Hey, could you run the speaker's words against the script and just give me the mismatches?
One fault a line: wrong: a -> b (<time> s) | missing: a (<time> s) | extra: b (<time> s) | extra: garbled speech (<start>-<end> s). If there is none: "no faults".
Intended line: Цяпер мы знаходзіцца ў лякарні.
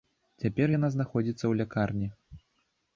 wrong: мы -> яна (0.8 s)